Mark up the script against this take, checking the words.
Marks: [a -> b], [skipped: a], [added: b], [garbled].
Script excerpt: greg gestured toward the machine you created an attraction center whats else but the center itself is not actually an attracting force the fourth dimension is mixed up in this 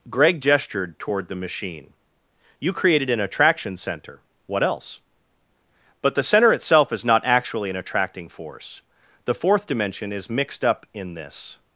greg gestured toward the machine you created an attraction center [whats -> what] else but the center itself is not actually an attracting force the fourth dimension is mixed up in this